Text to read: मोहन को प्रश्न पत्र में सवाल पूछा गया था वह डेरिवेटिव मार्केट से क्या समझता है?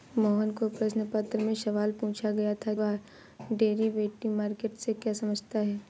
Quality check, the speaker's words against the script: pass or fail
pass